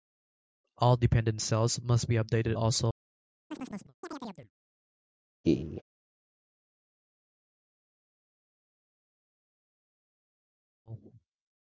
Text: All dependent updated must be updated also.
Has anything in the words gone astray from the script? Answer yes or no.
yes